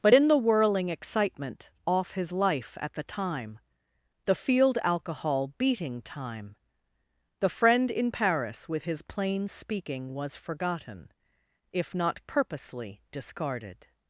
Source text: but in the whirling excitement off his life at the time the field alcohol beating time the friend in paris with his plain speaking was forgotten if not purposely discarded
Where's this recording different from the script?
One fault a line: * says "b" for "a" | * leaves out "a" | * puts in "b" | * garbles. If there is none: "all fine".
all fine